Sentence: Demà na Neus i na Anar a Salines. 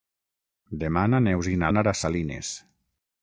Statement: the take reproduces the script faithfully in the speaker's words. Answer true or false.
true